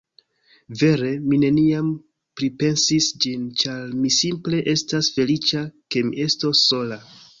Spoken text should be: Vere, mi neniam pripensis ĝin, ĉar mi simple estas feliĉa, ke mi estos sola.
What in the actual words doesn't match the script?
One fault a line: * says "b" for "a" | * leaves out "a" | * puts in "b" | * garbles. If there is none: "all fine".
all fine